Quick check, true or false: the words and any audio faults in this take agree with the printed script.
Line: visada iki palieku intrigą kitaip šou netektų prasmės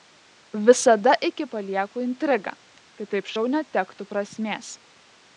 true